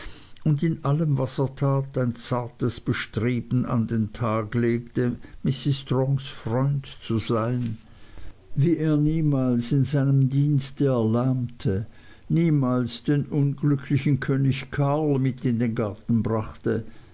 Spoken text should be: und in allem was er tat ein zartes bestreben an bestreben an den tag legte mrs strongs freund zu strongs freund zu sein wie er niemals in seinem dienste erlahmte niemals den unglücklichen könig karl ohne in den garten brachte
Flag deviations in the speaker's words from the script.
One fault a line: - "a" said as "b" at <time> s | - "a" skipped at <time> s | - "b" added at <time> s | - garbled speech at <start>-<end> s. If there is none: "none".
- "bestreben an" skipped at 3.9 s
- "strongs freund zu" skipped at 7.2 s
- "ohne" said as "mit" at 15.2 s